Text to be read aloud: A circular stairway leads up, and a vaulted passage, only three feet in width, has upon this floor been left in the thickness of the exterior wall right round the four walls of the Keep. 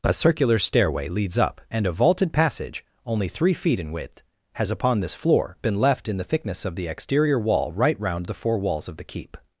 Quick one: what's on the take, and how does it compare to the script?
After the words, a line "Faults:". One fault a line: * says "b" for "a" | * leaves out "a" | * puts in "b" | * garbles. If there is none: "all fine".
A circular stairway leads up, and a vaulted passage, only three feet in width, has upon this floor been left in the thickness of the exterior wall right round the four walls of the Keep.
Faults:
all fine